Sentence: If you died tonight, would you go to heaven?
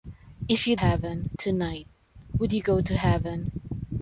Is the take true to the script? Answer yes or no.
no